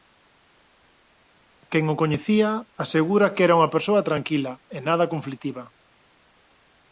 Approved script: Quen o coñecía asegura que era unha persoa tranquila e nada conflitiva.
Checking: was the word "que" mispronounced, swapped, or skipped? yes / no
no